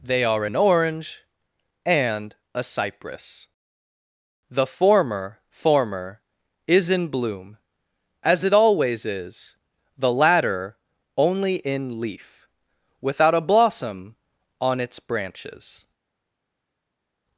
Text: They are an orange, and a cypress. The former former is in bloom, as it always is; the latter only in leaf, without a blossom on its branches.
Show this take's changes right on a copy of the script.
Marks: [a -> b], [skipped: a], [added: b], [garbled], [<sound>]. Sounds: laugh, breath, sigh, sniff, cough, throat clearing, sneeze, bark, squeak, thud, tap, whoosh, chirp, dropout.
They are an orange, and a cypress. The former former is in bloom, as it always is; the latter only in leaf, without a blossom on its branches.